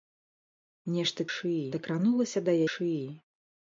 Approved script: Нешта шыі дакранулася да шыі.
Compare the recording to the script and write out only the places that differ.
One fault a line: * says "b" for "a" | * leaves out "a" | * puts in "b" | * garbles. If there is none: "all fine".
all fine